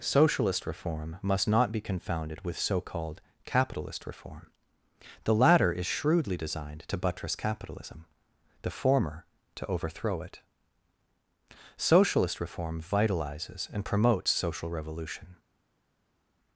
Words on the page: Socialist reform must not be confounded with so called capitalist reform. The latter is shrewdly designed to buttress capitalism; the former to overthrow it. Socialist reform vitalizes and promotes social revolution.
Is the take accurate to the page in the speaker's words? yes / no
yes